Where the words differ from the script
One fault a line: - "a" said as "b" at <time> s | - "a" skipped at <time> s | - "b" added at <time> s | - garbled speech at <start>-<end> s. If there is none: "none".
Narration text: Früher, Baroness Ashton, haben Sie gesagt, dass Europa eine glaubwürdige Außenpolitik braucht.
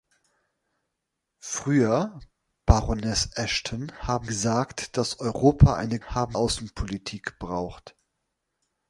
- "Sie" skipped at 4.3 s
- "glaubwürdige" said as "haben" at 6.1 s